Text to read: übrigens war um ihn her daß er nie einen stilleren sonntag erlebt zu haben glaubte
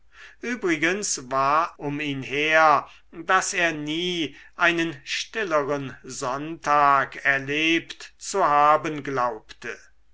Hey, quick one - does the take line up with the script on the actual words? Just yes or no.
yes